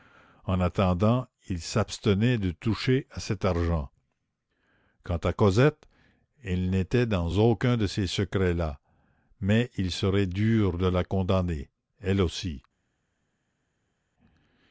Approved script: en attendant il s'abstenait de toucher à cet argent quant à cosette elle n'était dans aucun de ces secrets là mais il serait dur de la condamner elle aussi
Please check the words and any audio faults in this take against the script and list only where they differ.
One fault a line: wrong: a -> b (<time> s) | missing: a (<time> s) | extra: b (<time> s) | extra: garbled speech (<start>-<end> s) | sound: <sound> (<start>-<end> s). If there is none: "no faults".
no faults